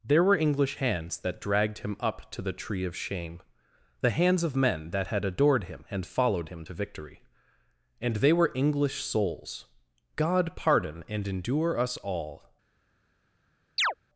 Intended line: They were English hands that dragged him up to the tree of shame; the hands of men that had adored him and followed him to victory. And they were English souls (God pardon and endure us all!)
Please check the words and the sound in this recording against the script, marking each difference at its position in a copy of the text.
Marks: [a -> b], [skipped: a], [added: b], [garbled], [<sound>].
[They -> There] were English hands that dragged him up to the tree of shame; the hands of men that had adored him and followed him to victory. And they were English souls (God pardon and endure us all!) [chirp]